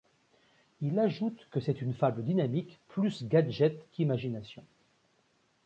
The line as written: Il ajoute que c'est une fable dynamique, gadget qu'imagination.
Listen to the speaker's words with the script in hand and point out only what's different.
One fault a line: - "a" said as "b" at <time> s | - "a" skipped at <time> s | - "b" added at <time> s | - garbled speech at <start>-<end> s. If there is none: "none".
- "plus" added at 2.9 s